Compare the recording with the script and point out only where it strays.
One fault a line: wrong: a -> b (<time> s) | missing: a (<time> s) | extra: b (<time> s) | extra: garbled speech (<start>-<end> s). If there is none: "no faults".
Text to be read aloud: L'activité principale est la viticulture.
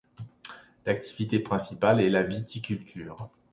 no faults